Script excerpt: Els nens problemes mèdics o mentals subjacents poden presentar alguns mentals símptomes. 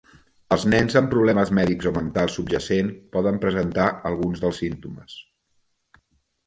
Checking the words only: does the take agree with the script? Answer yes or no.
no